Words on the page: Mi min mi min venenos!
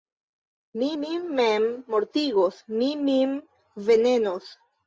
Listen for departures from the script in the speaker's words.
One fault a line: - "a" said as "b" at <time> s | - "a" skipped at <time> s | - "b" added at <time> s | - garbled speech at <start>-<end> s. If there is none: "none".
- "mem mortigos" added at 1.4 s